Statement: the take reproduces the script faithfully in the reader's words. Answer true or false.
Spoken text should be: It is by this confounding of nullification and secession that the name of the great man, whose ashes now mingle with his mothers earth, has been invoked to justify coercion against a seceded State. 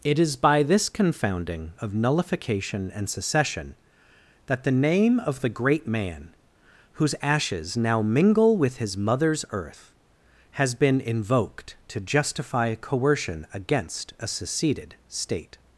true